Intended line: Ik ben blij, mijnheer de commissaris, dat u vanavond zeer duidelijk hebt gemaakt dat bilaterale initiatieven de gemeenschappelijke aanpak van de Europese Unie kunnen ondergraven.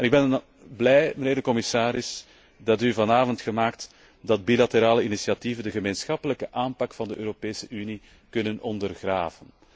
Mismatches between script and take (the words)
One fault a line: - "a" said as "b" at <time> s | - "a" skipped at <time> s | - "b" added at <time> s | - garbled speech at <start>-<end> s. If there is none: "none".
- "zeer duidelijk hebt" skipped at 3.4 s